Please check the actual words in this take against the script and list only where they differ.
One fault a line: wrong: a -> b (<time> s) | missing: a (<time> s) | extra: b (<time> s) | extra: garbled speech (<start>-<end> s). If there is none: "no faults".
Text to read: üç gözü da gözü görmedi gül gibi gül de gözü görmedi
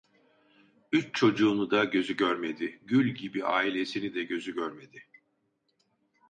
wrong: gözü -> çocuğunu (1.1 s)
wrong: gül -> ailesini (3.5 s)